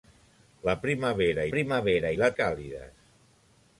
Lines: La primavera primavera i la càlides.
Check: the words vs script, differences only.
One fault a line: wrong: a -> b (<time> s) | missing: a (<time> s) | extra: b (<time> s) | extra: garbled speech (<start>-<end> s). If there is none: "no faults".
no faults